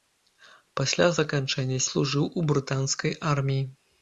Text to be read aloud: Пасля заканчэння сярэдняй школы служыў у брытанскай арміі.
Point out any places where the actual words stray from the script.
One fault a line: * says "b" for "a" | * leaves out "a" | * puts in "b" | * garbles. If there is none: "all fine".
* leaves out "сярэдняй школы"